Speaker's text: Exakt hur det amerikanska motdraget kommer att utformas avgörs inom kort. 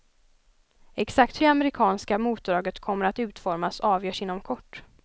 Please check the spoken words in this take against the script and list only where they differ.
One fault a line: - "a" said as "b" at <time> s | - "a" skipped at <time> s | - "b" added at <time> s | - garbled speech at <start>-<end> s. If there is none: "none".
- "hur" skipped at 1.4 s